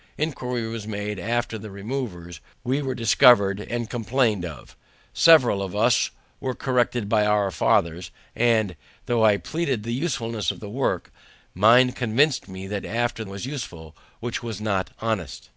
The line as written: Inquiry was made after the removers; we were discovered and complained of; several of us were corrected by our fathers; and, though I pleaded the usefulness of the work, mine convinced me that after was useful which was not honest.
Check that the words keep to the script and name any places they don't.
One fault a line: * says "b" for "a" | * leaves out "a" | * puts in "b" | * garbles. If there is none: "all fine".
all fine